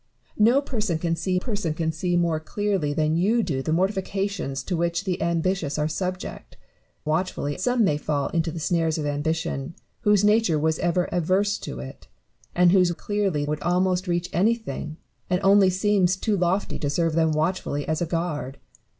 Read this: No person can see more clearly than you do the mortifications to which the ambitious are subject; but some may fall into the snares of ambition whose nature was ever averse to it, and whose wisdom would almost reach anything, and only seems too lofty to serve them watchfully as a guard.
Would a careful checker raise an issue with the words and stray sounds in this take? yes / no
yes